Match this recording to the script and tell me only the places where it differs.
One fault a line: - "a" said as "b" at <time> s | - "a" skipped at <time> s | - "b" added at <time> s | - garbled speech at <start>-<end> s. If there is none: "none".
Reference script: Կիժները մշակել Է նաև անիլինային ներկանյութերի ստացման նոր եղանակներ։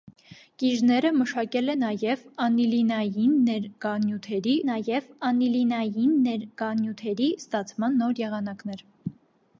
- "նաև անիլինային ներկանյութերի" added at 4.6 s